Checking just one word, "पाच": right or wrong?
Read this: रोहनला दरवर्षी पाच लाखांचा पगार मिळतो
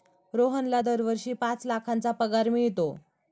right